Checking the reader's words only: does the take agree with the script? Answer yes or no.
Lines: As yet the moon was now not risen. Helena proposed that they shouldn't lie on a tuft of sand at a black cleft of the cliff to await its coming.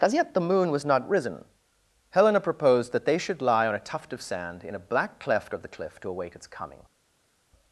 no